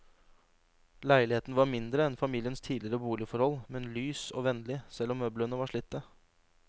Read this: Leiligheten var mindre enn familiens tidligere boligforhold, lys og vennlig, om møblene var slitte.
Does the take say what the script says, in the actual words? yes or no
no